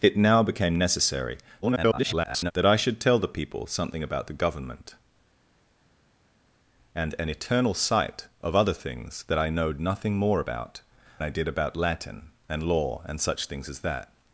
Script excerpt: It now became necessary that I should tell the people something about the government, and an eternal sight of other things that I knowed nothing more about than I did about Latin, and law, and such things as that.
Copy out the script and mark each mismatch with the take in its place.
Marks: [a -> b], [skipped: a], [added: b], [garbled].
It now became necessary [garbled] that I should tell the people something about the government, and an eternal sight of other things that I knowed nothing more about [skipped: than] I did about Latin, and law, and such things as that.